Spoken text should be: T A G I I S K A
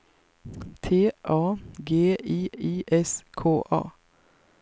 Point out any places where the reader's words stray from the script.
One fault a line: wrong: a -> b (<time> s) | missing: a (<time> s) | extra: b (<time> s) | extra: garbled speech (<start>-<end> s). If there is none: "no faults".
no faults